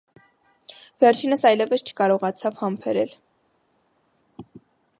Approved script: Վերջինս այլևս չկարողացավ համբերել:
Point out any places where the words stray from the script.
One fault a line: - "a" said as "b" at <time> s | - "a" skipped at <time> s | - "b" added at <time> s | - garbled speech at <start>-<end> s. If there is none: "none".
none